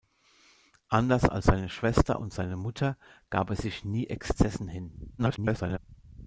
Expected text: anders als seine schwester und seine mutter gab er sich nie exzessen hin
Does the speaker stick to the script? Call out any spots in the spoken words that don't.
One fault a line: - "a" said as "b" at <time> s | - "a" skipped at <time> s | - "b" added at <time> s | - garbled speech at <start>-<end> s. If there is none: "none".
- garbled speech at 5.2-5.8 s